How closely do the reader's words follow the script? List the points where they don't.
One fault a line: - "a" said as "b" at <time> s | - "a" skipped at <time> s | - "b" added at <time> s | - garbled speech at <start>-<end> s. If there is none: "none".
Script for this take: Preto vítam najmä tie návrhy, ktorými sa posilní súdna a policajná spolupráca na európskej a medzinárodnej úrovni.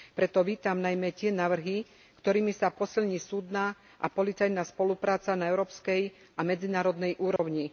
none